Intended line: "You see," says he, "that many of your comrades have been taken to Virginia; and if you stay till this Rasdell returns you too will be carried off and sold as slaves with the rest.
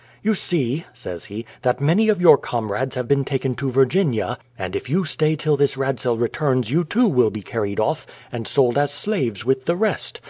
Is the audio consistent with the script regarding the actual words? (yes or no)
yes